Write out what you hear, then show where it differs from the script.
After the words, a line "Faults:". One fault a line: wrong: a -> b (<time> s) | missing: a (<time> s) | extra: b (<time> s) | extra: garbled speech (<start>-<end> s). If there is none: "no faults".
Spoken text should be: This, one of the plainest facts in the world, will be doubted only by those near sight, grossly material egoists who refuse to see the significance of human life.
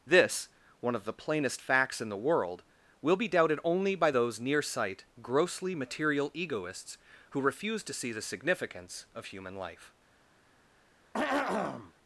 This, one of the plainest facts in the world, will be doubted only by those near sight, grossly material egoists who refuse to see the significance of human life.
Faults:
no faults